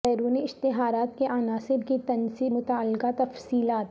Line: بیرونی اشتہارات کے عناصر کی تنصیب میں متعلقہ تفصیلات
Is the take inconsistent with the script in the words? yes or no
yes